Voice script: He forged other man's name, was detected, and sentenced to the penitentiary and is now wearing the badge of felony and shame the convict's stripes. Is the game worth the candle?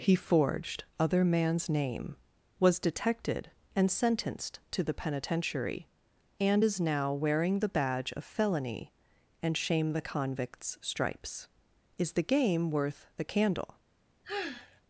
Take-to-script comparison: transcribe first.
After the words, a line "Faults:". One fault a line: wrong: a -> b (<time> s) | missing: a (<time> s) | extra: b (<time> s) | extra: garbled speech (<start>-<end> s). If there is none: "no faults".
He forged other man's name, was detected, and sentenced to the penitentiary and is now wearing the badge of felony and shame the convict's stripes. Is the game worth the candle?
Faults:
no faults